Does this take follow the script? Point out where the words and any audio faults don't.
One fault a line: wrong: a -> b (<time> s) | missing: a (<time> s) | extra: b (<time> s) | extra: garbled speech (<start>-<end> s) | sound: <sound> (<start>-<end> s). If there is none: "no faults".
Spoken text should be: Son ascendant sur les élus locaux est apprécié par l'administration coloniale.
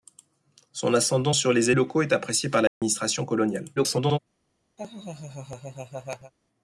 missing: élus (1.7 s)
sound: dropout (2.7-2.8 s)
extra: garbled speech (3.8-4.2 s)
sound: laugh (4.8-6.3 s)